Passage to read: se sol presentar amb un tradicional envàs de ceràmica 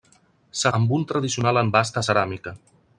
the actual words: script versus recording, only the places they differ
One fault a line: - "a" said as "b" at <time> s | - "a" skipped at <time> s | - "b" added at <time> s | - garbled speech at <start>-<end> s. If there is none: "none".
- "sol presentar" skipped at 0.7 s